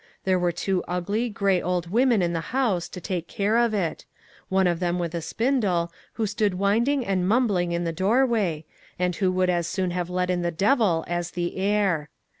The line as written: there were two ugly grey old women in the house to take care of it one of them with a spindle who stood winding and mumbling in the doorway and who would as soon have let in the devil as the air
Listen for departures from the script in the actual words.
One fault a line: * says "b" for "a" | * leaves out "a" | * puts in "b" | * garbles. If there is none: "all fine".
all fine